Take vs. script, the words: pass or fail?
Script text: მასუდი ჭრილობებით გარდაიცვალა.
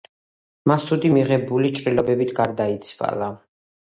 fail